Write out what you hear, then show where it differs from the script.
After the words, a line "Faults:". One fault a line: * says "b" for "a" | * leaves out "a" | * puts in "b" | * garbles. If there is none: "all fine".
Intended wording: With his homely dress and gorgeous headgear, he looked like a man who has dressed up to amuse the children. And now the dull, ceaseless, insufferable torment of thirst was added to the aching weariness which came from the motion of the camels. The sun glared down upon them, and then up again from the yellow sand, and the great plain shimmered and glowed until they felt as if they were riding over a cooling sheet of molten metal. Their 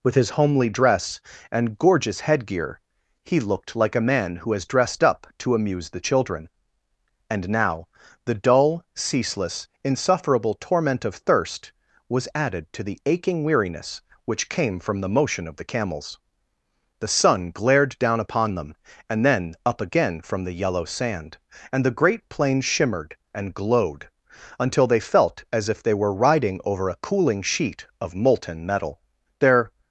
With his homely dress and gorgeous headgear, he looked like a man who has dressed up to amuse the children. And now the dull, ceaseless, insufferable torment of thirst was added to the aching weariness which came from the motion of the camels. The sun glared down upon them, and then up again from the yellow sand, and the great plain shimmered and glowed until they felt as if they were riding over a cooling sheet of molten metal. Their
Faults:
all fine